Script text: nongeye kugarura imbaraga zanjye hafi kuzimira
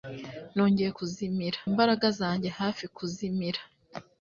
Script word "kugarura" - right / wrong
wrong